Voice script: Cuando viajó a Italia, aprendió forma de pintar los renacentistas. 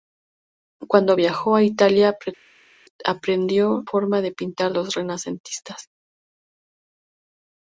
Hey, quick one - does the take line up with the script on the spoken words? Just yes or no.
yes